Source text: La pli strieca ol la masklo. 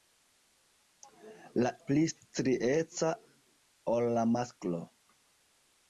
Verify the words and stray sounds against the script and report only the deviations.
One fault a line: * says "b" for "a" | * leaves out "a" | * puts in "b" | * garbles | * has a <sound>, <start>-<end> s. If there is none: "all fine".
all fine